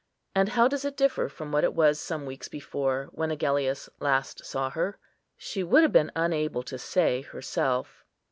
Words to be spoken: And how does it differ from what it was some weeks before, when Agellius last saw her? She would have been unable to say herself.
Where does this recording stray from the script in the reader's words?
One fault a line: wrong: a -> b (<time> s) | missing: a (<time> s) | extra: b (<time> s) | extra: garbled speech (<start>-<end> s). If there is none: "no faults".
no faults